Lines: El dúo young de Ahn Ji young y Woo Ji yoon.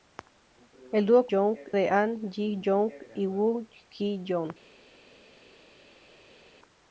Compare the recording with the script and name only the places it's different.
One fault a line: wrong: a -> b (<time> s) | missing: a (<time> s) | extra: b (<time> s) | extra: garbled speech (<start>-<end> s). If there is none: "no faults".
no faults